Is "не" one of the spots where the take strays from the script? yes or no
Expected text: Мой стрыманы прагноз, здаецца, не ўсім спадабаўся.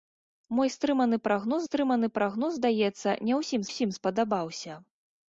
no